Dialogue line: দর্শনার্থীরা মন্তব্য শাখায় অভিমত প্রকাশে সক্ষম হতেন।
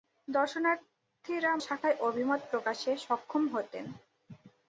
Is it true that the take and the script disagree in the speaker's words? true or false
true